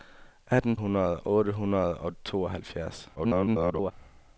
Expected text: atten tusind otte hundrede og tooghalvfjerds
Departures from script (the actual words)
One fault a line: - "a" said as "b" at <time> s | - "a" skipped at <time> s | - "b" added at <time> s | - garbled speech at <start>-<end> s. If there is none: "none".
- "tusind" said as "hundrede" at 0.7 s
- garbled speech at 3.1-3.9 s